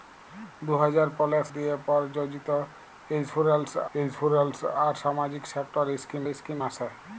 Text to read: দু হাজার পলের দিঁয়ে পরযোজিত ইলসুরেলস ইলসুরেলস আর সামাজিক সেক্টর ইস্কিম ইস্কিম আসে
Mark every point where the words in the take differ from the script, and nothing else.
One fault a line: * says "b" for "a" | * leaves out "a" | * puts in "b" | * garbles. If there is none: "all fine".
all fine